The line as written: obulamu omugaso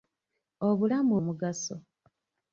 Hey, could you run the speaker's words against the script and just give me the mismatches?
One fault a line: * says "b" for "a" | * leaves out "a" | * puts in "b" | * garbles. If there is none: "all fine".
all fine